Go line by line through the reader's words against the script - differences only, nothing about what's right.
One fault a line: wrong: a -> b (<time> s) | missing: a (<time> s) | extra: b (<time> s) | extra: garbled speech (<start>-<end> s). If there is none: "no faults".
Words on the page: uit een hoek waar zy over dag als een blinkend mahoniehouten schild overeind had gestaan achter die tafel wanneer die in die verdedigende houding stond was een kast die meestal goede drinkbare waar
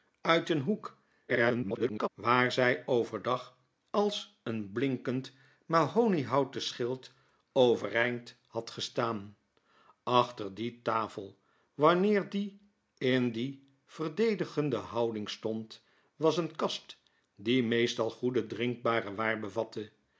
extra: garbled speech (1.3-2.1 s)